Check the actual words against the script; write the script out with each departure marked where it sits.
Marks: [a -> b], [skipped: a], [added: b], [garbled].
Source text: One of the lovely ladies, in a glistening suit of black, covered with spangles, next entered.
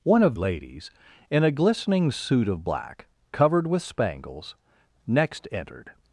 One of [skipped: the lovely] ladies, in a glistening suit of black, covered with spangles, next entered.